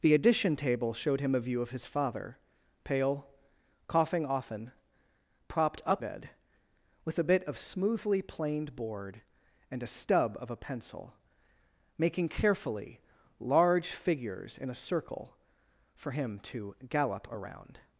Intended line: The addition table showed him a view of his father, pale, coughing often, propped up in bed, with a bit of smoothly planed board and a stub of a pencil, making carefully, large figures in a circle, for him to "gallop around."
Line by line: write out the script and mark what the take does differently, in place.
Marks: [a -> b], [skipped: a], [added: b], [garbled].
The addition table showed him a view of his father, pale, coughing often, propped up [skipped: in] bed, with a bit of smoothly planed board and a stub of a pencil, making carefully, large figures in a circle, for him to "gallop around."